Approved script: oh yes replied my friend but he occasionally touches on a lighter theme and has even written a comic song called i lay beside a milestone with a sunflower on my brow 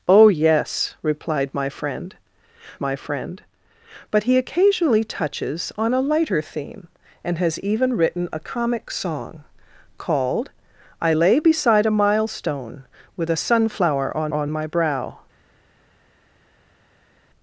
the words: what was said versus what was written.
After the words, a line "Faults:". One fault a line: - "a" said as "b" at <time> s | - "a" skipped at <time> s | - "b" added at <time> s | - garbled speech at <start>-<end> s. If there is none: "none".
oh yes replied my friend my friend but he occasionally touches on a lighter theme and has even written a comic song called i lay beside a milestone with a sunflower on on my brow
Faults:
- "my friend" added at 2.8 s
- "on" added at 14.3 s